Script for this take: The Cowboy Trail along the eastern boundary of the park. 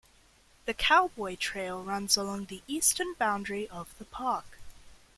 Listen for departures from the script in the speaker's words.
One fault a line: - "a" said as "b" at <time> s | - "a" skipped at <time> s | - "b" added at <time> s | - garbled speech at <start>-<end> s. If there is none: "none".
- "runs" added at 1.8 s